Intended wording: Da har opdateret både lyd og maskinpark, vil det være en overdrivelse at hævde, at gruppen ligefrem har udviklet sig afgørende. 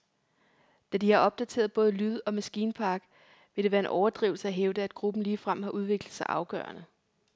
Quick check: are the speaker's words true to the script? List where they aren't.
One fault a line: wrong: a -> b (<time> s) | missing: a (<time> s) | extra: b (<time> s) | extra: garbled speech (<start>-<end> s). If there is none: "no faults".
extra: de (1.0 s)